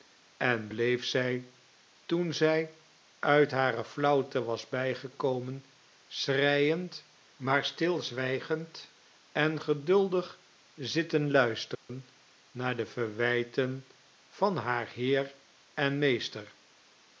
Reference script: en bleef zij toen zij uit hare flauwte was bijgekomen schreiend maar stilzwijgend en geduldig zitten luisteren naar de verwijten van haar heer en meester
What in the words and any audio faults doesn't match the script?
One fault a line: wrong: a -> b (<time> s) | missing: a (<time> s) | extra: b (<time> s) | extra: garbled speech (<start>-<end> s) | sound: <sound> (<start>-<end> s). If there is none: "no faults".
sound: dropout (11.7-11.9 s)